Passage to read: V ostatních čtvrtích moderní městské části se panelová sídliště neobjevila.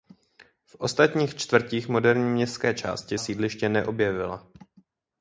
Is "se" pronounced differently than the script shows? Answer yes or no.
yes